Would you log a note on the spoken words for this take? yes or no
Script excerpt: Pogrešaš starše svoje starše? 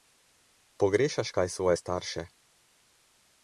yes